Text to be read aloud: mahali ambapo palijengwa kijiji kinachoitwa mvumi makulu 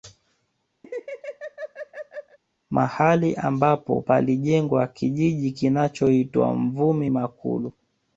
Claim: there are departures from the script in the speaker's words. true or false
false